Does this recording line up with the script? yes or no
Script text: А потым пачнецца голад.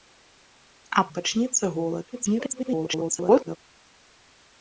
no